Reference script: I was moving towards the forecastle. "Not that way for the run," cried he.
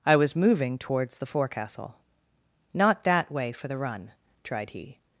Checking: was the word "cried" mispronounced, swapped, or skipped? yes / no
yes